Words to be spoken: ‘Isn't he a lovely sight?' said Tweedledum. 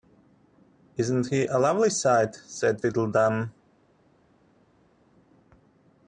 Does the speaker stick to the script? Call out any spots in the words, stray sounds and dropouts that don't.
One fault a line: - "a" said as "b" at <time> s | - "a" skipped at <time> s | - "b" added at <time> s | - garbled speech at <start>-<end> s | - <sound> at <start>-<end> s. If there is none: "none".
none